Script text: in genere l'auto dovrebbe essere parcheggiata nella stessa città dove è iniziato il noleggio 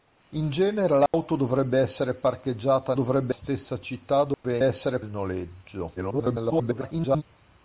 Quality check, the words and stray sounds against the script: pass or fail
fail